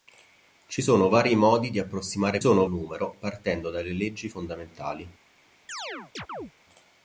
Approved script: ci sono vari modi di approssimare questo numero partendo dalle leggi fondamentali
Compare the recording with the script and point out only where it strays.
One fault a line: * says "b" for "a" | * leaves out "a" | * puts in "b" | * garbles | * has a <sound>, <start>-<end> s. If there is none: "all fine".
* says "sono" for "questo"
* has a chirp, 5.7-6.5 s